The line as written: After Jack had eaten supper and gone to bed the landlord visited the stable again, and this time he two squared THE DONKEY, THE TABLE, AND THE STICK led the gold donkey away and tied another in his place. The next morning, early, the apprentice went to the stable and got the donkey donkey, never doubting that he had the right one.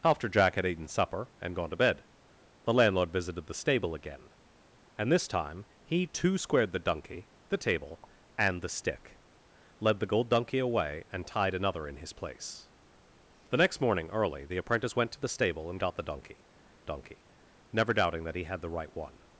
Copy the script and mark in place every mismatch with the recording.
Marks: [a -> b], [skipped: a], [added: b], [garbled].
After Jack had eaten supper and gone to bed the landlord visited the stable again, and this time he two squared THE DONKEY, THE TABLE, AND THE STICK led the gold donkey away and tied another in his place. The next morning, early, the apprentice went to the stable and got the donkey donkey, never doubting that he had the right one.